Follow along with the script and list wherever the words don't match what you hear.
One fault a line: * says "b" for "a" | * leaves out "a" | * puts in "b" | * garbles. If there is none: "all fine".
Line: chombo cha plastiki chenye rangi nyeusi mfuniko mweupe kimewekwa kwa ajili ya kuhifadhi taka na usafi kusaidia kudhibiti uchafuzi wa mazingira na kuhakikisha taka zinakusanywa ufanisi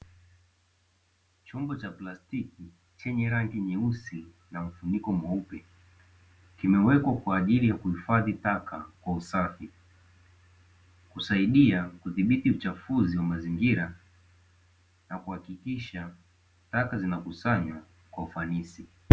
* puts in "na"
* says "kwa" for "na"
* puts in "kwa"